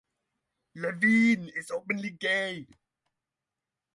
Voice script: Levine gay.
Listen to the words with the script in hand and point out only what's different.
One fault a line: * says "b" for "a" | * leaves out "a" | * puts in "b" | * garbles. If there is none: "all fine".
* puts in "is openly"